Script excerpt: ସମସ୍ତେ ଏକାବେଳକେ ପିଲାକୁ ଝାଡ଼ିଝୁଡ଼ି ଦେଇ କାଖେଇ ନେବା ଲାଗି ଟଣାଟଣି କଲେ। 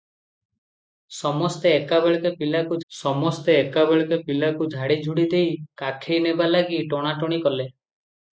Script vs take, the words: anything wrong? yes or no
yes